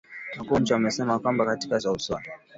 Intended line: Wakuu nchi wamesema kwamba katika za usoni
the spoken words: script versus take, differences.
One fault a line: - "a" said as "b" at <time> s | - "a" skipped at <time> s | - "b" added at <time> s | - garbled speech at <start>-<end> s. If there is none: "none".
none